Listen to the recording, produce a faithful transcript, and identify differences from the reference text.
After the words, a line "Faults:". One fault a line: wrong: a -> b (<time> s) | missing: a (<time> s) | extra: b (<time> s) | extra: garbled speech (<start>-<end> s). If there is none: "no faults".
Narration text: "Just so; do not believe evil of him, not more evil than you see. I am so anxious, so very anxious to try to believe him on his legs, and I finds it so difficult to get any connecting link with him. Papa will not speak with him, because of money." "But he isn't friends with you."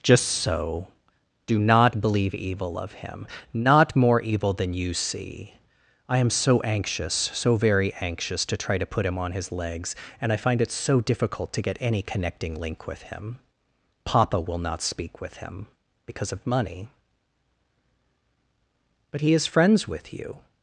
"Just so; do not believe evil of him, not more evil than you see. I am so anxious, so very anxious to try to put him on his legs, and I find it so difficult to get any connecting link with him. Papa will not speak with him, because of money." "But he is friends with you."
Faults:
wrong: believe -> put (8.8 s)
wrong: finds -> find (10.4 s)
wrong: isn't -> is (19.3 s)